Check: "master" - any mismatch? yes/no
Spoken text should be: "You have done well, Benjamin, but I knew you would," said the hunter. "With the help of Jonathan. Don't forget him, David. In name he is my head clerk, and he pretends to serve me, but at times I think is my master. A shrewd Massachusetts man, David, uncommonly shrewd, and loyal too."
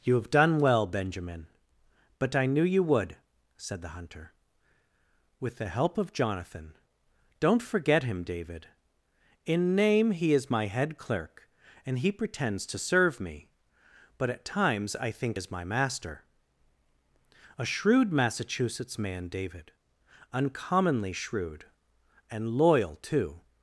no